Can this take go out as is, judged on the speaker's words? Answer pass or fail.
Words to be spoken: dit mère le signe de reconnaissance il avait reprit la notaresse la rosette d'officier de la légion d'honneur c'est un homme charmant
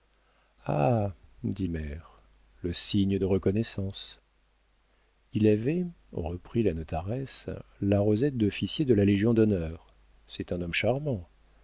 pass